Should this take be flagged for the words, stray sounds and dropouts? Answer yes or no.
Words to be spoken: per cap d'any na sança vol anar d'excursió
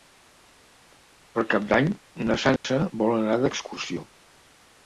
yes